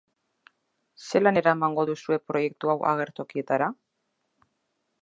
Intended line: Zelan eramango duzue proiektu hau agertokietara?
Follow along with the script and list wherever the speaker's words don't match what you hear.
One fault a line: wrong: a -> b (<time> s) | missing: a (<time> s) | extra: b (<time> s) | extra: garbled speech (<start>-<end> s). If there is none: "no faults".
no faults